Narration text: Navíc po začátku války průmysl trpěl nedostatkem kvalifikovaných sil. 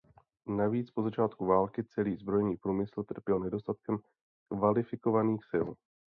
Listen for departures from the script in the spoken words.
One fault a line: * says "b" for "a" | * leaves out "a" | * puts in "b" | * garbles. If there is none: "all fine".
* puts in "celý zbrojní"